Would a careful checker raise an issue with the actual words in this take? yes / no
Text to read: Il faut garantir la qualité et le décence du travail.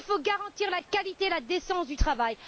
yes